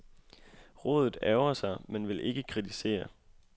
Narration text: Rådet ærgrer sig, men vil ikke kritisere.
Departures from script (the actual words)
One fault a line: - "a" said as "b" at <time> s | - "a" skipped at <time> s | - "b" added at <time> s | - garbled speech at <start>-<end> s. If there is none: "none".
none